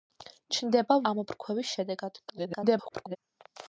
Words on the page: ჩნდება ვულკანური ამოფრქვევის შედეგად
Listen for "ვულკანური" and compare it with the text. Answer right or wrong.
wrong